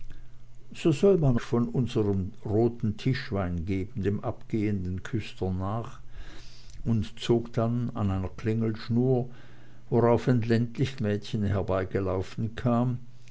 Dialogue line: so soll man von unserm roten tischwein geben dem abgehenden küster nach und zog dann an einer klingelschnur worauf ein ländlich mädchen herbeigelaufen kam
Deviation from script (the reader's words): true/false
false